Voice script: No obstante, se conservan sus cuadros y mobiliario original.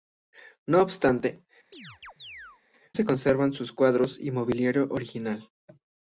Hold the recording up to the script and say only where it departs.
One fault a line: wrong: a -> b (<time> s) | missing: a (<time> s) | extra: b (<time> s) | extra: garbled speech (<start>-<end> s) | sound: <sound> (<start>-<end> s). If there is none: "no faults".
sound: chirp (1.7-2.6 s)